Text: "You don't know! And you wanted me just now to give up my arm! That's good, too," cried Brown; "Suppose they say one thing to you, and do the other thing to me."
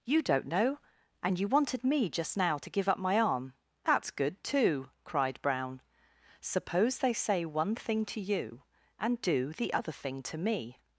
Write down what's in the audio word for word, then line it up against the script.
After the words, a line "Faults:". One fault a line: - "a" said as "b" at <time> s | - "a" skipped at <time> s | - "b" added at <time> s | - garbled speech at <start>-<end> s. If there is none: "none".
"You don't know! And you wanted me just now to give up my arm! That's good, too," cried Brown; "Suppose they say one thing to you, and do the other thing to me."
Faults:
none